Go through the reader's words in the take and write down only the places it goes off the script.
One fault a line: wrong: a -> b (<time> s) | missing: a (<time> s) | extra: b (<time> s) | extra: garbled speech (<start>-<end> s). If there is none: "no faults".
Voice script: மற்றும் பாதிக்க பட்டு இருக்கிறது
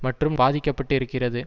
no faults